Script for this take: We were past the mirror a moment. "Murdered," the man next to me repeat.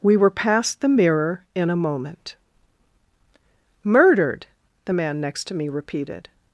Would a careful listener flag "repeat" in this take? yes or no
yes